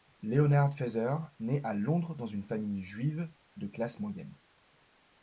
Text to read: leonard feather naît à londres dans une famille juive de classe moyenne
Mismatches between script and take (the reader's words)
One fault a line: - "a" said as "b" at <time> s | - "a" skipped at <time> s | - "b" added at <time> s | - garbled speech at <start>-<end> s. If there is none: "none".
none